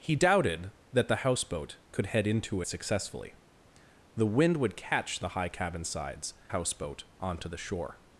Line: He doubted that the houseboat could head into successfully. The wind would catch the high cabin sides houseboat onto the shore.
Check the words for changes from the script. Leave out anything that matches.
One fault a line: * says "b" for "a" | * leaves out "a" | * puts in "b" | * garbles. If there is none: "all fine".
all fine